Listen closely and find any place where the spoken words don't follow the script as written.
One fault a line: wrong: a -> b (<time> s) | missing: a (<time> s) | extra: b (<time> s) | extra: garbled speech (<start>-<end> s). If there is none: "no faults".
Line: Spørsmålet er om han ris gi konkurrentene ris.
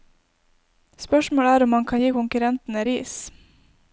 wrong: ris -> kan (1.9 s)